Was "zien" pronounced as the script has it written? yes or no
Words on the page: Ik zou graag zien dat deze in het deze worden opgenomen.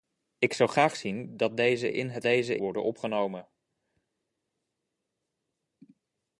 yes